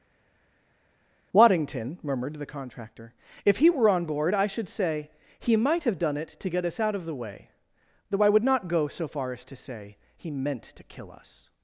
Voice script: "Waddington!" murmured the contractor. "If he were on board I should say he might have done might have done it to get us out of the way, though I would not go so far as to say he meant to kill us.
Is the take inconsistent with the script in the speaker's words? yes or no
yes